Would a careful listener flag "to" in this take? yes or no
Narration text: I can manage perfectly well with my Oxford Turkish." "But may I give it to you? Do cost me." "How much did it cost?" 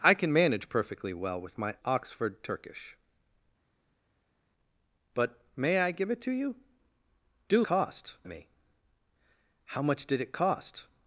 no